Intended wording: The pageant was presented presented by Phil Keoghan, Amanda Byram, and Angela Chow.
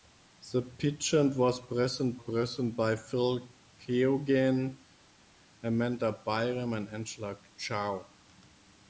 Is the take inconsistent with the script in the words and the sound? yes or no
no